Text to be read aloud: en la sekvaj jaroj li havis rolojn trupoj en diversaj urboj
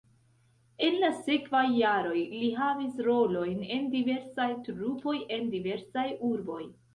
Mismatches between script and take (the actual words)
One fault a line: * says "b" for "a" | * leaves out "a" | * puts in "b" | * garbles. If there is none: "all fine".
* puts in "en diversaj"